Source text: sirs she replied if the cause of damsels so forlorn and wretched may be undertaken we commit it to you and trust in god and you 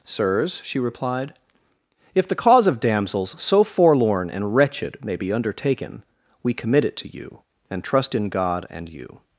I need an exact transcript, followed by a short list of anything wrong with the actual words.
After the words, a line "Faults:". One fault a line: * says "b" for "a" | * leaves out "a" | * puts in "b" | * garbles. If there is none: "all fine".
sirs she replied if the cause of damsels so forlorn and wretched may be undertaken we commit it to you and trust in god and you
Faults:
all fine